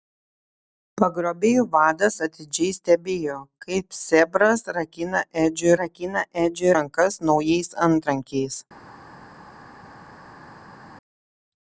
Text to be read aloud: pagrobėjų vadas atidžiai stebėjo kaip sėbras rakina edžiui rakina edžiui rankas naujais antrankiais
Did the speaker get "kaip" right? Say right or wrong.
right